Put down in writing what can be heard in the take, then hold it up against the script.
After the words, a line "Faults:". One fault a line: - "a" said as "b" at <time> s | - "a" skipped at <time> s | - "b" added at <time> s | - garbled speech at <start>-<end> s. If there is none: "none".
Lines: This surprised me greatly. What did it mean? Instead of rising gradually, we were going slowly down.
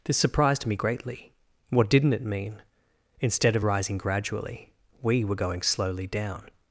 This surprised me greatly. What didn't it mean? Instead of rising gradually, we were going slowly down.
Faults:
- "did" said as "didn't" at 1.9 s